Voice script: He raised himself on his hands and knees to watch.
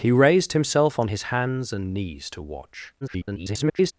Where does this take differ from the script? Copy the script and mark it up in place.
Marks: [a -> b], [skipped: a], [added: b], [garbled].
He raised himself on his hands and knees to watch. [garbled]